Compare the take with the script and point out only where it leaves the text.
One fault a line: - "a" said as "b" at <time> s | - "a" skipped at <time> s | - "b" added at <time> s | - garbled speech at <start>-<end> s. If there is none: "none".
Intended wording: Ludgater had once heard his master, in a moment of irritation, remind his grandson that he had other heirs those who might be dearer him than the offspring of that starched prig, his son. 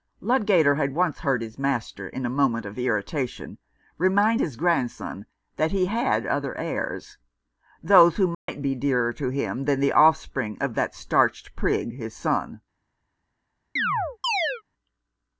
- "to" added at 9.1 s